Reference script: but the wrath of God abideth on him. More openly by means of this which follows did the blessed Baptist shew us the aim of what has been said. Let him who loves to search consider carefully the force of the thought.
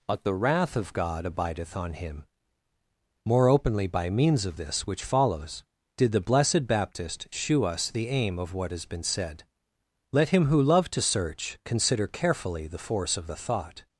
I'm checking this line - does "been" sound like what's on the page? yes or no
yes